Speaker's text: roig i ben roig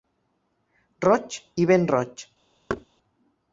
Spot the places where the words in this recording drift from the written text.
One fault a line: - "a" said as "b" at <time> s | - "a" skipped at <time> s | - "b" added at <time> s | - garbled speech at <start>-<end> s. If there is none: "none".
none